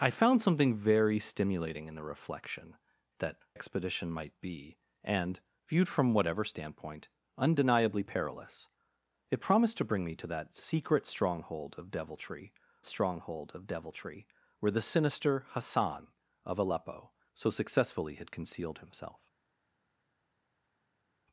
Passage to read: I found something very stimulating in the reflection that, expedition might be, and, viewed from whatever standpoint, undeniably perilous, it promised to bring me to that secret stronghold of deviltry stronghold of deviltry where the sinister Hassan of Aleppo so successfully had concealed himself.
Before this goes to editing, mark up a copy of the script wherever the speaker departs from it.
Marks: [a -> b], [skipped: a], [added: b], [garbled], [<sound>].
I found something very stimulating in the reflection that, expedition might be, and, viewed from whatever standpoint, undeniably perilous, it promised to bring me to that secret stronghold of deviltry stronghold of deviltry where the sinister Hassan of Aleppo so successfully had concealed himself.